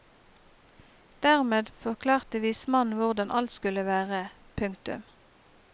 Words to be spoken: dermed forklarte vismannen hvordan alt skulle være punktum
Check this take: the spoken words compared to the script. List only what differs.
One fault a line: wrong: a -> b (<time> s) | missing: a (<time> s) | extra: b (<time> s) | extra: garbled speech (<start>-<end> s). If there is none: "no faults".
no faults